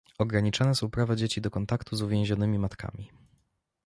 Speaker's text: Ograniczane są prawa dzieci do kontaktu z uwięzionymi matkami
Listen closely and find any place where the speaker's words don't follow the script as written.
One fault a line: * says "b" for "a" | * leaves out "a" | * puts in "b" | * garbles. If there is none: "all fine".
all fine